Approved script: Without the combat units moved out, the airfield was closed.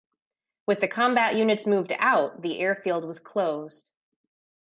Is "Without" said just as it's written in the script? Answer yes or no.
no